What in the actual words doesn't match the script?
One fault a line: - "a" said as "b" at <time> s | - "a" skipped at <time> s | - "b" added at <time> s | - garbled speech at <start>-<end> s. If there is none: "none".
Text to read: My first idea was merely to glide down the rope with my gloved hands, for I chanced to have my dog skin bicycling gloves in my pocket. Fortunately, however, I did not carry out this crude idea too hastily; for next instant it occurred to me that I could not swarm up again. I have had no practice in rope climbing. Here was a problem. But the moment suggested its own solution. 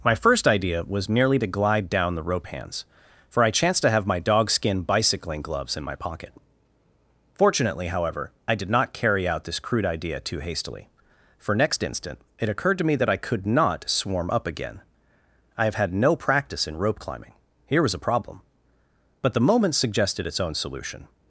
- "with my gloved" skipped at 2.5 s